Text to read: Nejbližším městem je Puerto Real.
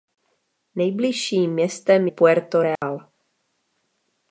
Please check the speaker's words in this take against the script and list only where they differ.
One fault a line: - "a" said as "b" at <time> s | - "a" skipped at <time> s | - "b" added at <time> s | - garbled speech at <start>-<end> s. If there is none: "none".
- "je" skipped at 2.1 s